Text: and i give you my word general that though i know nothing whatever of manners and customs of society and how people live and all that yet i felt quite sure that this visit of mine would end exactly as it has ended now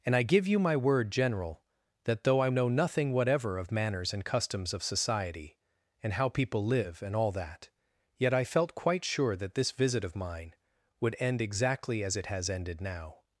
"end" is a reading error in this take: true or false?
false